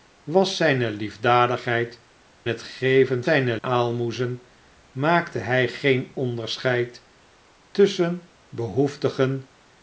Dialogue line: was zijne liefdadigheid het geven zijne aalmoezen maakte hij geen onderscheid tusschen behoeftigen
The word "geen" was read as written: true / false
true